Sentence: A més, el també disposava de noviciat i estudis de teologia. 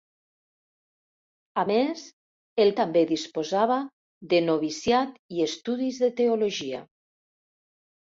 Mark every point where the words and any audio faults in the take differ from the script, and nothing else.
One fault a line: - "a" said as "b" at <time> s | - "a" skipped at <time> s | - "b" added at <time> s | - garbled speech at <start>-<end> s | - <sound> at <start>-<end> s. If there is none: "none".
none